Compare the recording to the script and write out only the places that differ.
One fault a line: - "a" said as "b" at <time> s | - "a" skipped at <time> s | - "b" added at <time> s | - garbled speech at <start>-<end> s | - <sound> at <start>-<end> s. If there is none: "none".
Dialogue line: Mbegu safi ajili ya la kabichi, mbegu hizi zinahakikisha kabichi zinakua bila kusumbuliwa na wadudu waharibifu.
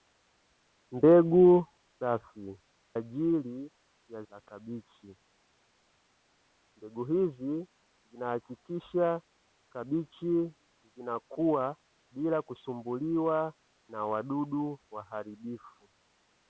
none